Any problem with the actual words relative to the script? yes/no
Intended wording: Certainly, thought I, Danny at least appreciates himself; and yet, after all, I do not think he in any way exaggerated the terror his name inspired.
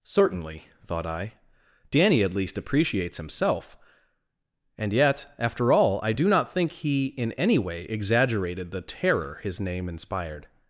no